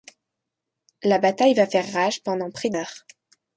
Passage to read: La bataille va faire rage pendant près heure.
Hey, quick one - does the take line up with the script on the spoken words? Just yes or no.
yes